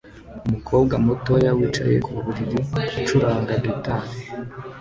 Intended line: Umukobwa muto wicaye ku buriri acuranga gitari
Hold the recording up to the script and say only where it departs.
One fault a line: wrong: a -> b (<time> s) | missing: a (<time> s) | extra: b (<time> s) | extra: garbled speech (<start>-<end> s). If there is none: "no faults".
no faults